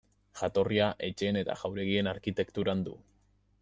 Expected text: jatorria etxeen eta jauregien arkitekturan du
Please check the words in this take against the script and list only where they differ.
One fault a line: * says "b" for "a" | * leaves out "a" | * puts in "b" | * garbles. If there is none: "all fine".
all fine